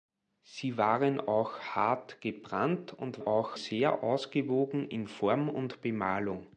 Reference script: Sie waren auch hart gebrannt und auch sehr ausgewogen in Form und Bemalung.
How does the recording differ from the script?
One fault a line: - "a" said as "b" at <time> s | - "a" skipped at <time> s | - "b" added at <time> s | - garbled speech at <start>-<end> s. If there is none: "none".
none